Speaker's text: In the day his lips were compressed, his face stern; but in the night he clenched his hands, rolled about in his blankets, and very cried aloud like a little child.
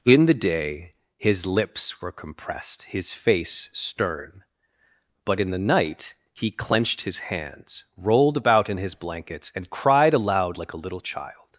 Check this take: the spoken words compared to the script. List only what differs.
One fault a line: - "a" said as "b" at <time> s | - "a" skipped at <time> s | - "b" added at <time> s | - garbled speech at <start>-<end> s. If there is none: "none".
- "very" skipped at 9.7 s